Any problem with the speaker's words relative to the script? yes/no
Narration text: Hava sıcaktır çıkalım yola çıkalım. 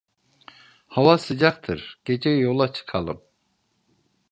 yes